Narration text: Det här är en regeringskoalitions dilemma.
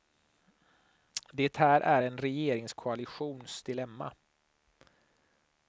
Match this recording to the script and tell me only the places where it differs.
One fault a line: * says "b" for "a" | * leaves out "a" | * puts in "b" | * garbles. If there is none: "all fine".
all fine